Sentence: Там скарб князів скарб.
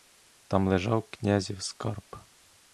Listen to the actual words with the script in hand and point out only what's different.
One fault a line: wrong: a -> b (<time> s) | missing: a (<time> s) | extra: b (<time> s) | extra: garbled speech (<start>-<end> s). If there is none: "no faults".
wrong: скарб -> лежав (0.7 s)